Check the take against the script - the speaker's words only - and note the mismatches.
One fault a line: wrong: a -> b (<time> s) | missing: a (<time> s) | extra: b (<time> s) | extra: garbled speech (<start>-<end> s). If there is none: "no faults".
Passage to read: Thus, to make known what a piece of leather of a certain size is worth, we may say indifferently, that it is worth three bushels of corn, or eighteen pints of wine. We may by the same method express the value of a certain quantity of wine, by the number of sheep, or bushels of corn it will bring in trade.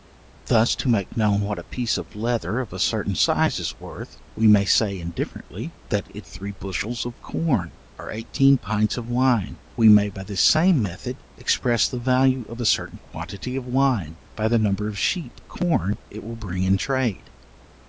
missing: is worth (6.3 s)
missing: or bushels of (15.4 s)